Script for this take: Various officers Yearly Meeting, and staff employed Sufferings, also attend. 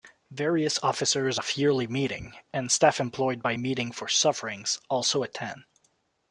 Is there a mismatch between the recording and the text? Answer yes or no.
yes